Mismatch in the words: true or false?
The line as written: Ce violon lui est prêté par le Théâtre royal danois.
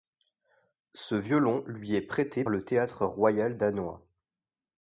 true